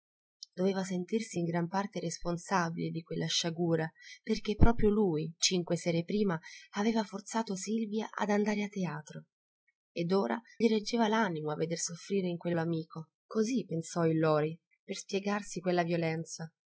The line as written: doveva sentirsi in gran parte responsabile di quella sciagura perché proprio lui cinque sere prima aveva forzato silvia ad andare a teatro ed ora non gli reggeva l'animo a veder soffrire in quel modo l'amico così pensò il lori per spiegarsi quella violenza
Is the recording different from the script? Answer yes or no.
yes